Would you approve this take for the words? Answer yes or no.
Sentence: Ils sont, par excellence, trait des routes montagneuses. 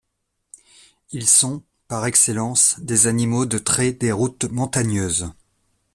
no